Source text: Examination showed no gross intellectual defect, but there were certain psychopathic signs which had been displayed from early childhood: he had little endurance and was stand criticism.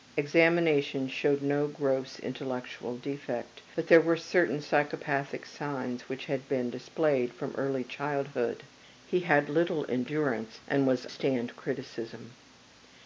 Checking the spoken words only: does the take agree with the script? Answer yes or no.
yes